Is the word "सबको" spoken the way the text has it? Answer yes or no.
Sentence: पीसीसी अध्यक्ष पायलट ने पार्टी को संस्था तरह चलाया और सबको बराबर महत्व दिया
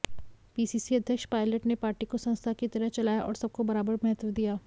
yes